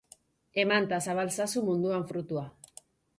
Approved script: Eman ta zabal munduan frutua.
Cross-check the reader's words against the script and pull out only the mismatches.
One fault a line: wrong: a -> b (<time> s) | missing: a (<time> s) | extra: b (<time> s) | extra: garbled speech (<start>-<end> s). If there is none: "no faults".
extra: zazu (1.4 s)